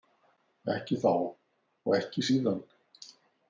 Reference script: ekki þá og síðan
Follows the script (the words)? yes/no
no